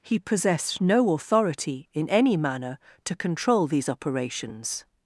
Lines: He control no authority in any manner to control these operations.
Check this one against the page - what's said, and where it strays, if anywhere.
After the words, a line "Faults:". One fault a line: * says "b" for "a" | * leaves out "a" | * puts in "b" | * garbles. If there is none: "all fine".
He possessed no authority in any manner to control these operations.
Faults:
* says "possessed" for "control"